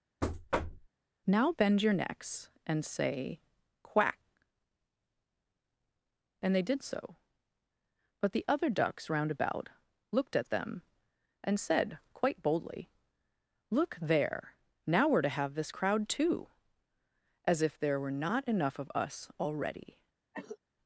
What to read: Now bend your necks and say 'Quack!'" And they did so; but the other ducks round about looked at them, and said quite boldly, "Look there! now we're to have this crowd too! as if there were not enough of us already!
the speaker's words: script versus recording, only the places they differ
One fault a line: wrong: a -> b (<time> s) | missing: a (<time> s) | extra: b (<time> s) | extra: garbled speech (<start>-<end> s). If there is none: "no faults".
no faults